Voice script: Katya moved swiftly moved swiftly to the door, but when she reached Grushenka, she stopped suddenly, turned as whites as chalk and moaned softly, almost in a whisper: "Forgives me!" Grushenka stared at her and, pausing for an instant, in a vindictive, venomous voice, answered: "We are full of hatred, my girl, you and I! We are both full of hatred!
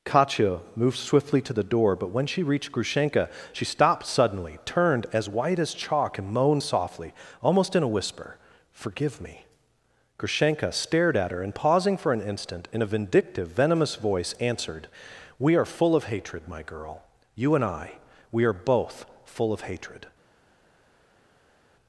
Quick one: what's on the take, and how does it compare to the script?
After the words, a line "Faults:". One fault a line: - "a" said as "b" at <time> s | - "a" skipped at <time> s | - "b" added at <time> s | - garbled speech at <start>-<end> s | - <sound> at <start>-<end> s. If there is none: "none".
Katya moved swiftly to the door, but when she reached Grushenka, she stopped suddenly, turned as white as chalk and moaned softly, almost in a whisper: "Forgive me!" Grushenka stared at her and, pausing for an instant, in a vindictive, venomous voice, answered: "We are full of hatred, my girl, you and I! We are both full of hatred!
Faults:
- "moved swiftly" skipped at 1.4 s
- "whites" said as "white" at 5.3 s
- "Forgives" said as "Forgive" at 8.7 s